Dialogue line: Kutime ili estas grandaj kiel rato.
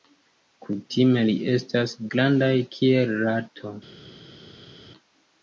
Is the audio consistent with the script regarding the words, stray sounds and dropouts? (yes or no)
yes